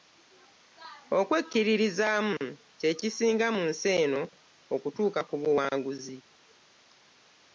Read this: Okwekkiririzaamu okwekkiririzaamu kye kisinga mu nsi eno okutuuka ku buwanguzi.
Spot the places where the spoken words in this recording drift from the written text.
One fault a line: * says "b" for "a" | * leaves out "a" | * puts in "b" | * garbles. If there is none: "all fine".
* leaves out "okwekkiririzaamu"